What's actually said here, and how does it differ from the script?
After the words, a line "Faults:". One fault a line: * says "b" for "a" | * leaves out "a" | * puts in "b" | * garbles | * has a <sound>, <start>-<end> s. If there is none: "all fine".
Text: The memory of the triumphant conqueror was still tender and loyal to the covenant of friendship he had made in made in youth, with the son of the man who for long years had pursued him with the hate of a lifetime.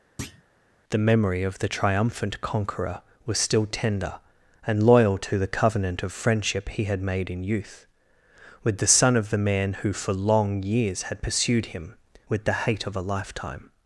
The memory of the triumphant conqueror was still tender and loyal to the covenant of friendship he had made in youth, with the son of the man who for long years had pursued him with the hate of a lifetime.
Faults:
* has a thud, 0.2-0.4 s
* leaves out "made in"